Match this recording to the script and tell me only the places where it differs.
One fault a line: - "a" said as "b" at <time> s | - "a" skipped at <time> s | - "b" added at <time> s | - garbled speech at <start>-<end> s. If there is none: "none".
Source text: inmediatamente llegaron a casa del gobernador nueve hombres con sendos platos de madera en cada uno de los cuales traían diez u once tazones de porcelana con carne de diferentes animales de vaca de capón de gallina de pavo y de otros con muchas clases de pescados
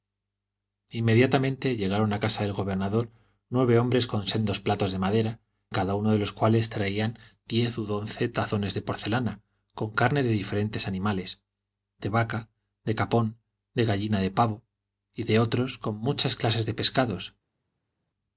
- "en" skipped at 5.4 s